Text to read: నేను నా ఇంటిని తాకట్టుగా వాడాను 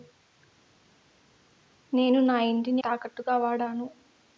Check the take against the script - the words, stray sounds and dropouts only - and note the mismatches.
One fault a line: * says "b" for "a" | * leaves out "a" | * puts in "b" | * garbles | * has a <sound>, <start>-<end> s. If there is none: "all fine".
all fine